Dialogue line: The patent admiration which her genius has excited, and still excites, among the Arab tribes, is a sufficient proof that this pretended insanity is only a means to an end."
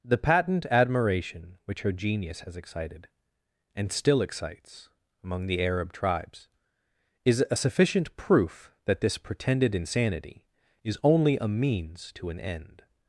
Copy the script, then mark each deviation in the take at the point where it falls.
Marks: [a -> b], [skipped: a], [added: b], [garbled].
The patent admiration which her genius has excited, and still excites, among the Arab tribes, is a sufficient proof that this pretended insanity is only a means to an end."